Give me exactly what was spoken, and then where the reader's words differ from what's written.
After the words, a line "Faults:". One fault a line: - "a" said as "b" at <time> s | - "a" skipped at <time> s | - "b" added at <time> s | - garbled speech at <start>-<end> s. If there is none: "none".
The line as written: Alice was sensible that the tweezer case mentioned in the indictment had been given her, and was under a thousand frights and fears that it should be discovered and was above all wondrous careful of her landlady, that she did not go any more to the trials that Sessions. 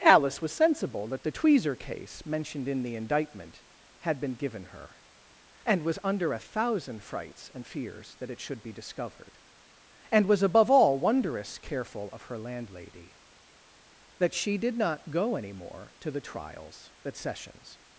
Alice was sensible that the tweezer case mentioned in the indictment had been given her, and was under a thousand frights and fears that it should be discovered and was above all wondrous careful of her landlady, that she did not go any more to the trials that Sessions.
Faults:
none